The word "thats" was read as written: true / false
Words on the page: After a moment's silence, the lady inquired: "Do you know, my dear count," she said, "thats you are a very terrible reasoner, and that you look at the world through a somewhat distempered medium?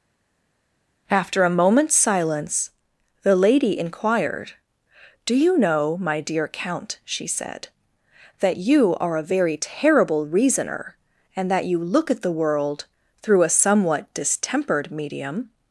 false